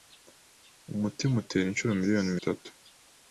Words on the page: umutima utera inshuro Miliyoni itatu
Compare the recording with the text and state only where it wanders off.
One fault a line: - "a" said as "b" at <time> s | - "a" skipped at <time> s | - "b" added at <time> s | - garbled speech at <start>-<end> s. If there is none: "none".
none